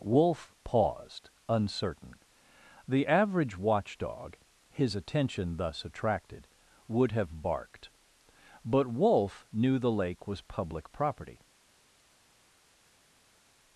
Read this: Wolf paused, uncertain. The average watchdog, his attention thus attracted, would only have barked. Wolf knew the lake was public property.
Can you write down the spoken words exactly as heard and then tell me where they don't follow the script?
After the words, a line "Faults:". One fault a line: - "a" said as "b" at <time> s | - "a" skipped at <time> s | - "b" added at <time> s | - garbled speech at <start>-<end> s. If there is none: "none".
Wolf paused, uncertain. The average watchdog, his attention thus attracted, would have barked. But Wolf knew the lake was public property.
Faults:
- "only" skipped at 7.1 s
- "But" added at 8.6 s